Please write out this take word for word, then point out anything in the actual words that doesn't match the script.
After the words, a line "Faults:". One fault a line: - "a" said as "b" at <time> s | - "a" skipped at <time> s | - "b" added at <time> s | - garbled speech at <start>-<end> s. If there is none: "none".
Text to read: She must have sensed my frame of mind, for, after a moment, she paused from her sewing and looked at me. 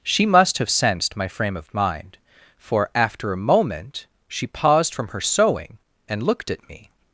She must have sensed my frame of mind, for, after a moment, she paused from her sewing and looked at me.
Faults:
none